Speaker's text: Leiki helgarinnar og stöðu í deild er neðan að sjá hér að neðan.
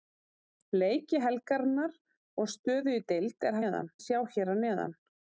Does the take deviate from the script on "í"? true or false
false